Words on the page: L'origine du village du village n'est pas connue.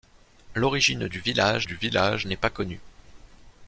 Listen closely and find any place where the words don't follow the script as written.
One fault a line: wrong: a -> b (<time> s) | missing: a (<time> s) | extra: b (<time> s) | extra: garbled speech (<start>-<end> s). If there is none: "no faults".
no faults